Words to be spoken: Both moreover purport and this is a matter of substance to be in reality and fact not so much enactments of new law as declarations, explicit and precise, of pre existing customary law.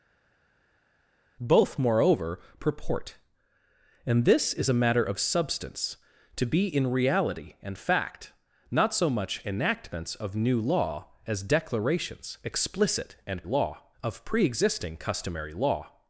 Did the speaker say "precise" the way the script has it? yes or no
no